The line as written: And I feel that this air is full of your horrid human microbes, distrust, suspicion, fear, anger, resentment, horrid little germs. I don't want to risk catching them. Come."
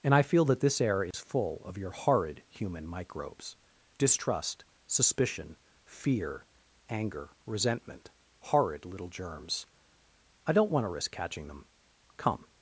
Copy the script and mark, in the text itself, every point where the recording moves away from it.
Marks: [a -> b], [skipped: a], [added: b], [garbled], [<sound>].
And I feel that this air is [dropout] full of your horrid human microbes, distrust, suspicion, fear, anger, resentment, horrid little germs. I don't want to risk catching them. Come."